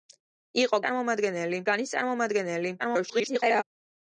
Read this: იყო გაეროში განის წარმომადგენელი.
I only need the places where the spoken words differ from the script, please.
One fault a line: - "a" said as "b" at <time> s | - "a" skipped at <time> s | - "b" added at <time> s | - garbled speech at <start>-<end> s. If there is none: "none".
- "გაეროში" said as "წარმომადგენელი" at 0.8 s
- garbled speech at 2.8-3.6 s